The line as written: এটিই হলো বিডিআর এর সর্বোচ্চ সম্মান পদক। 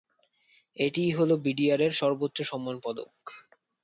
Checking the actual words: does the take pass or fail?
pass